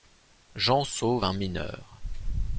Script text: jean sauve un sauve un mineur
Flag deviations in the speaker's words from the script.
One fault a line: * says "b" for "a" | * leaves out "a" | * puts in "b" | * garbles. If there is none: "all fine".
* leaves out "sauve un"